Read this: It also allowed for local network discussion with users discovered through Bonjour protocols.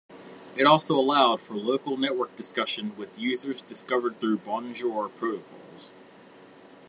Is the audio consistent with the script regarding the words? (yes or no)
yes